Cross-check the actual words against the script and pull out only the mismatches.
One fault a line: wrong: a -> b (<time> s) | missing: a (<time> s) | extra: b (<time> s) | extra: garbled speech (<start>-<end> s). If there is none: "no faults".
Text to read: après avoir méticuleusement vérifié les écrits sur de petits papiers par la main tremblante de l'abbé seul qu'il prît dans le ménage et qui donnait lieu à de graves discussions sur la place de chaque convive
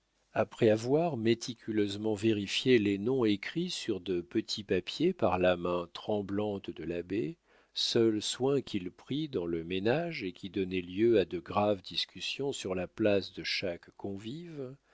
extra: noms (3.0 s)
extra: soin (8.2 s)